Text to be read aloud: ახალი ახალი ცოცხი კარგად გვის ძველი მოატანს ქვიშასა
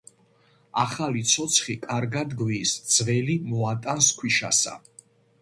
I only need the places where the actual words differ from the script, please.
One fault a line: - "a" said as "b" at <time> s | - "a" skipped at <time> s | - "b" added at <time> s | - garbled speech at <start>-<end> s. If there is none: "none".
- "ახალი" skipped at 1.2 s